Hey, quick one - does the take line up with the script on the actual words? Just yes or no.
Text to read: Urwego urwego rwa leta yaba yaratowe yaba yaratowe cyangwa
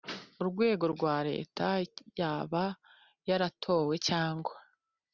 no